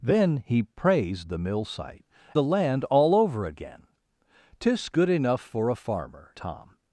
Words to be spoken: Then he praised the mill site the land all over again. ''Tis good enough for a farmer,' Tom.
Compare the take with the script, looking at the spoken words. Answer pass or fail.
pass